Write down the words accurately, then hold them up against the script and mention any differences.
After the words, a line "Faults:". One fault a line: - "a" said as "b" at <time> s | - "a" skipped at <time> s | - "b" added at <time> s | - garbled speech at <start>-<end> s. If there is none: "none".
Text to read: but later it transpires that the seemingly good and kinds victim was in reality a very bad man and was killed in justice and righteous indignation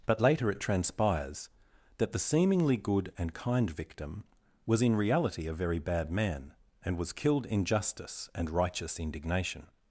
but later it transpires that the seemingly good and kind victim was in reality a very bad man and was killed in justice and righteous indignation
Faults:
- "kinds" said as "kind" at 3.3 s